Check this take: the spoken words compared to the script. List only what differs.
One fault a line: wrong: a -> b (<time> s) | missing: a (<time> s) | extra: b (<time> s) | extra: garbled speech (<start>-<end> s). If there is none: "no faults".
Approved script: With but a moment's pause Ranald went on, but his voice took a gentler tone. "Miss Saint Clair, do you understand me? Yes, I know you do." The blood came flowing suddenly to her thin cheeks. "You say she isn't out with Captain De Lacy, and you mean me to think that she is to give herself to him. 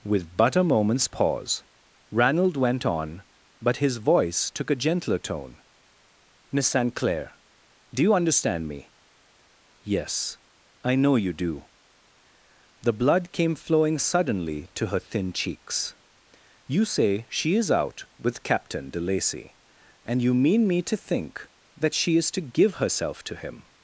wrong: isn't -> is (17.6 s)